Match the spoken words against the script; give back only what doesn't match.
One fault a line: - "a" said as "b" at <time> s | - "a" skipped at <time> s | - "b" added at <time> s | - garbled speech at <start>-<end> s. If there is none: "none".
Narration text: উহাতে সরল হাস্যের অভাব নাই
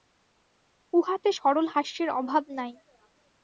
none